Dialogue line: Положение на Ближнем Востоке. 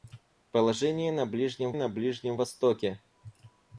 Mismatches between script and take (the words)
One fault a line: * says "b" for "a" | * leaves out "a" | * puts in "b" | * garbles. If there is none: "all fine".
* puts in "на Ближнем"